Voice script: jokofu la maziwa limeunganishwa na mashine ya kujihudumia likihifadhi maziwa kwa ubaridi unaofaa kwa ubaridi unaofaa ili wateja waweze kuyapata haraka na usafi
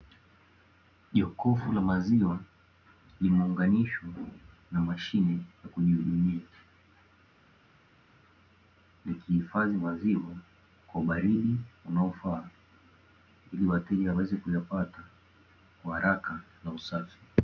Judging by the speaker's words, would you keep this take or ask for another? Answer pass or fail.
fail